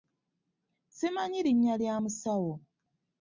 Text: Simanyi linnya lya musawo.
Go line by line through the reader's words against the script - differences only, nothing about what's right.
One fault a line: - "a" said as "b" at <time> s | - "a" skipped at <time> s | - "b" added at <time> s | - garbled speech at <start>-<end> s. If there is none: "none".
none